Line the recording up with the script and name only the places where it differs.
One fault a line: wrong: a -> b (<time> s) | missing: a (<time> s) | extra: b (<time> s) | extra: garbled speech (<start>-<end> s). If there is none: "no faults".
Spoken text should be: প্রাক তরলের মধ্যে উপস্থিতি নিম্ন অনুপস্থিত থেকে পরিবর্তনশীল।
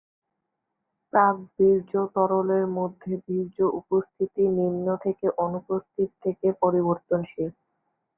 extra: বীর্য (1.6 s)
extra: বীর্য (3.2 s)
extra: থেকে (5.0 s)